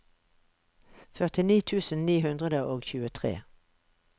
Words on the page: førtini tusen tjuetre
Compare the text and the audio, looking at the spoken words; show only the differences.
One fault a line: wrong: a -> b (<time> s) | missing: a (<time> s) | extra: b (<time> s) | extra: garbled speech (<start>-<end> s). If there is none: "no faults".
extra: ni hundre og (2.1 s)